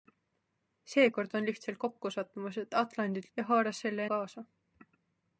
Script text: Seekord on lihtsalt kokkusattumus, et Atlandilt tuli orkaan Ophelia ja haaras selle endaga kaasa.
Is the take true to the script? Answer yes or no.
no